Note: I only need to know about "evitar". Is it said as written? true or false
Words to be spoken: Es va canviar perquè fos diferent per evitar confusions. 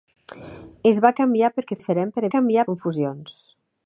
false